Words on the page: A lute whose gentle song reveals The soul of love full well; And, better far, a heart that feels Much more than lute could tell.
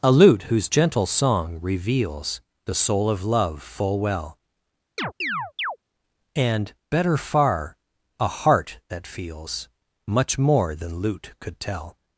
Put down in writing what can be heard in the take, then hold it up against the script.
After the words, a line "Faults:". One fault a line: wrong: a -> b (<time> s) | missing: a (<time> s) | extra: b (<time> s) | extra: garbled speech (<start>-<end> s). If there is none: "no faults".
A lute whose gentle song reveals The soul of love full well; And, better far, a heart that feels Much more than lute could tell.
Faults:
no faults